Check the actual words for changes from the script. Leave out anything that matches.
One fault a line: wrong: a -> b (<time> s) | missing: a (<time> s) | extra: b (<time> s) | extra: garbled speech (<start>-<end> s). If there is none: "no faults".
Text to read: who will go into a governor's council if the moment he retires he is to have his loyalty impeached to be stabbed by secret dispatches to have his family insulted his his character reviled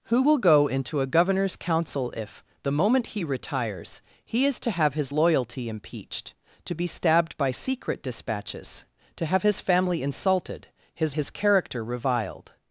no faults